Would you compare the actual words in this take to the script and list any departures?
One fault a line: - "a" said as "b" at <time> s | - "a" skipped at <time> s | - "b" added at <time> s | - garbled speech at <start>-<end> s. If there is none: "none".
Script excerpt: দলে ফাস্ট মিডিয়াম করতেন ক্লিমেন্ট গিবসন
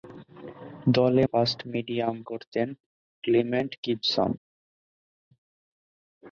none